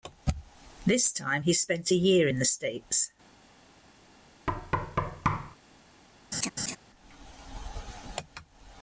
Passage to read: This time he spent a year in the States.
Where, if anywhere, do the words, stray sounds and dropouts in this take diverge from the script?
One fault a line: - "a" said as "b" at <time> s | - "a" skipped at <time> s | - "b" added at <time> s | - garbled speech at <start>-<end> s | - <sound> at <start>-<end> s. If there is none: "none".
- thud at 4.5-5.6 s
- laugh at 6.3-6.8 s